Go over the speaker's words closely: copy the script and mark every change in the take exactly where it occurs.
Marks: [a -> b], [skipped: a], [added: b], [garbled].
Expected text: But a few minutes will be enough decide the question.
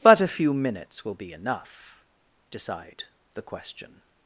But a few minutes will be enough decide the question.